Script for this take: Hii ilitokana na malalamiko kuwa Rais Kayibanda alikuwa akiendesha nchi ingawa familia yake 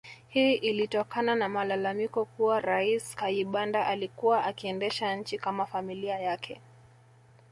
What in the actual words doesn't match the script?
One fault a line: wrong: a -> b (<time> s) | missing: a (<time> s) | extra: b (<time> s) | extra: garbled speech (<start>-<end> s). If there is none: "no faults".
wrong: ingawa -> kama (5.4 s)